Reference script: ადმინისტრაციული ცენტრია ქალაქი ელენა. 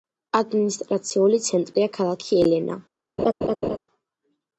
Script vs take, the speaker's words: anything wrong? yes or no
no